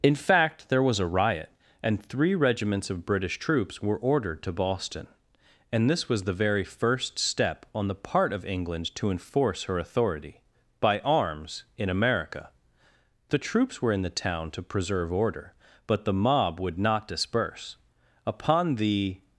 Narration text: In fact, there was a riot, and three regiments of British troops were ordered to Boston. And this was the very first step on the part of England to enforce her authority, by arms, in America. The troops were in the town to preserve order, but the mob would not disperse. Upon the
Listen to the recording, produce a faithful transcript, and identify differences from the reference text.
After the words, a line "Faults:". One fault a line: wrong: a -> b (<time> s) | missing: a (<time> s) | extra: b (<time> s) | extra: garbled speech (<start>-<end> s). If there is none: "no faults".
In fact, there was a riot, and three regiments of British troops were ordered to Boston. And this was the very first step on the part of England to enforce her authority, by arms, in America. The troops were in the town to preserve order, but the mob would not disperse. Upon the
Faults:
no faults